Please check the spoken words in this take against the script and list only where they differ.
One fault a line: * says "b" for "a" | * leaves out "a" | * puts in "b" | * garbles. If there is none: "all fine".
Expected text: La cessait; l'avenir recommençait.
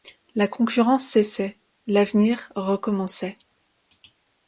* puts in "concurrence"